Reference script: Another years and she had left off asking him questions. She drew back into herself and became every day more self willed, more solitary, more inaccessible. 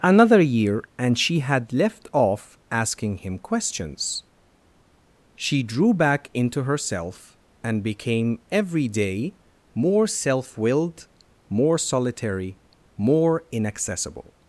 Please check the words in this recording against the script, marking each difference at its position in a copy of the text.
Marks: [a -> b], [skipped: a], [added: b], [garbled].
Another [years -> year] and she had left off asking him questions. She drew back into herself and became every day more self willed, more solitary, more inaccessible.